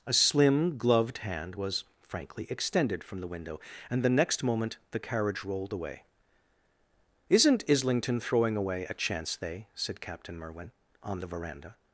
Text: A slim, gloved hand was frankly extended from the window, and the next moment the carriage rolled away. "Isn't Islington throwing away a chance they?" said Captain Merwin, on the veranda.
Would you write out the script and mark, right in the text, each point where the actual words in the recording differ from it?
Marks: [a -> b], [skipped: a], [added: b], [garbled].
A slim, gloved hand was frankly extended from the window, and the next moment the carriage rolled away. "Isn't Islington throwing away a chance they?" said Captain Merwin, on the veranda.